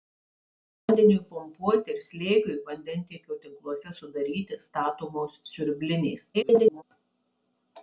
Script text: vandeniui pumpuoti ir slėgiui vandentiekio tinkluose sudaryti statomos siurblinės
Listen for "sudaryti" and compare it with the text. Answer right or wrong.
right